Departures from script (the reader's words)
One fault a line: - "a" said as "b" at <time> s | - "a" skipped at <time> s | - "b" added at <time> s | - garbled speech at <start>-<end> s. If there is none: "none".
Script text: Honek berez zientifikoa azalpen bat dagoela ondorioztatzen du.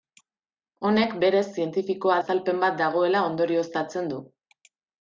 none